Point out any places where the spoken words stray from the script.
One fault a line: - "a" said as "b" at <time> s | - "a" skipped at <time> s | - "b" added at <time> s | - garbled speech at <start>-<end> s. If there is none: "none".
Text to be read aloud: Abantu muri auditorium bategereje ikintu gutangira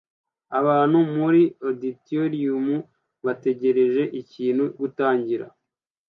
none